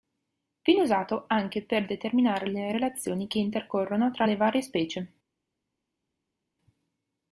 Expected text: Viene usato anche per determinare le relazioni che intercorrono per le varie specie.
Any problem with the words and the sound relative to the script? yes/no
yes